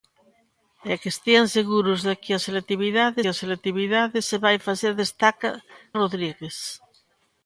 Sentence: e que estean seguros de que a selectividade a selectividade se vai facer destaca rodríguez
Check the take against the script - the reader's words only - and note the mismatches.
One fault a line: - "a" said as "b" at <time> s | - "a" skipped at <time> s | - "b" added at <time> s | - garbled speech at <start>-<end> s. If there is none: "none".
none